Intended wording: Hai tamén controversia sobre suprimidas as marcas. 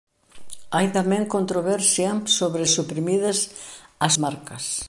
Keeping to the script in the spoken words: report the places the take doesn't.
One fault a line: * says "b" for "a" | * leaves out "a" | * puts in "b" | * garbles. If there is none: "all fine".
all fine